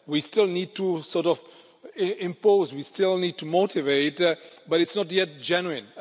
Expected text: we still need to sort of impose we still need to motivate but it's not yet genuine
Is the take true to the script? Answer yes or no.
yes